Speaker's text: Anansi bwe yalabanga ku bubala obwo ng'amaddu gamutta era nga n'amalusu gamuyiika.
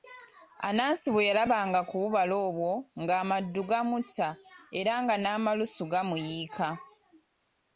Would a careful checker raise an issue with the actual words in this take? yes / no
no